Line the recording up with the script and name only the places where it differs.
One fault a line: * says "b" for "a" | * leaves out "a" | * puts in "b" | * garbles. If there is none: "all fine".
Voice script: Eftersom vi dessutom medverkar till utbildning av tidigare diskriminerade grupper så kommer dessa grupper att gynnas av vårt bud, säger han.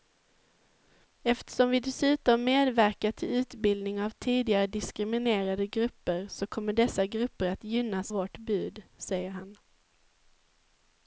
* leaves out "av"